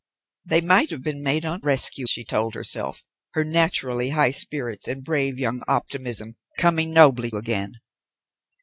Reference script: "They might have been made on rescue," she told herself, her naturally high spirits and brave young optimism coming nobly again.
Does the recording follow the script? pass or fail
pass